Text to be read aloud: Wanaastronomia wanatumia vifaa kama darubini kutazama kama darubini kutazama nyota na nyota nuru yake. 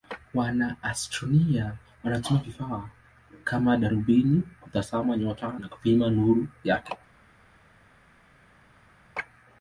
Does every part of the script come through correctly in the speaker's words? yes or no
no